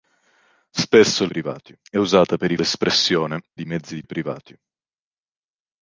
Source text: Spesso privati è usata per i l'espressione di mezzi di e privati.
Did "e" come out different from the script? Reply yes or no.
no